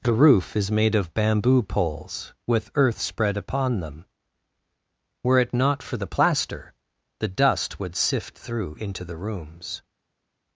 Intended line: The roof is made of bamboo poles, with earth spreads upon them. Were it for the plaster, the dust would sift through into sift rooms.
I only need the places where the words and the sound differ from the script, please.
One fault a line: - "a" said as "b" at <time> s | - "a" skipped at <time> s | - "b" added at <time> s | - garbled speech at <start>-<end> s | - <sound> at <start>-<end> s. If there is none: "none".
- "spreads" said as "spread" at 3.0 s
- "not" added at 5.5 s
- "sift" said as "the" at 9.0 s